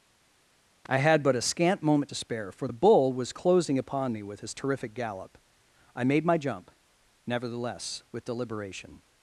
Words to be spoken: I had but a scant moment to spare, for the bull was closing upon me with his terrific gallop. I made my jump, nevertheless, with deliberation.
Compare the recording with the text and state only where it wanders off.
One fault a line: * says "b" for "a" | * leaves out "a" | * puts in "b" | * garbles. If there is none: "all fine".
all fine